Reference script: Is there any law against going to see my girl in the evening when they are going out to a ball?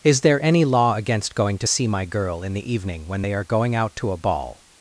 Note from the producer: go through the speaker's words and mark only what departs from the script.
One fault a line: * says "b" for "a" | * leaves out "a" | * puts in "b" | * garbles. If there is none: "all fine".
all fine